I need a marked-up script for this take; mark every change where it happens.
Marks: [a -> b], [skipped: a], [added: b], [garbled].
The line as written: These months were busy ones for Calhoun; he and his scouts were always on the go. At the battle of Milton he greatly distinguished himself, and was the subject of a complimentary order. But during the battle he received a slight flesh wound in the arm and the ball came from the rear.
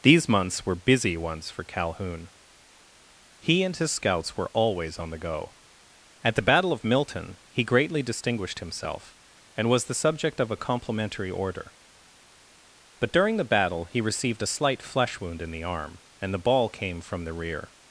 These months were busy ones for Calhoun; he and his scouts were always on the go. At the battle of Milton he greatly distinguished himself, and was the subject of a complimentary order. But during the battle he received a slight flesh wound in the arm and the ball came from the rear.